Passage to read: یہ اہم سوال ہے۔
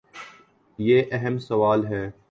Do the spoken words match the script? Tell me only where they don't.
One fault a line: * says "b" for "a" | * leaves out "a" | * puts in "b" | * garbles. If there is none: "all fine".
all fine